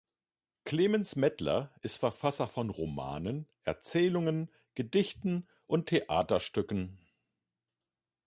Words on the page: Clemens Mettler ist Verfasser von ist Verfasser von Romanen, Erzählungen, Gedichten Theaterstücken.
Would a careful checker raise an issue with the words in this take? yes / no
yes